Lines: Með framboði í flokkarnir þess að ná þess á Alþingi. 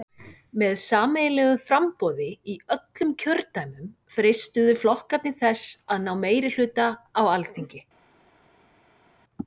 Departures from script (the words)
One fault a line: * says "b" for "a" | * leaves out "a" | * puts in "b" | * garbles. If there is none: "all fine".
* puts in "sameiginlegu"
* puts in "öllum kjördæmum freistuðu"
* says "meirihluta" for "þess"